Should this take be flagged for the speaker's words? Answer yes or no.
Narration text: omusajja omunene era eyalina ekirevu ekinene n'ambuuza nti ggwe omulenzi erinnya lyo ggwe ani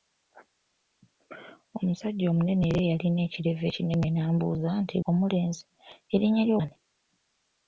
yes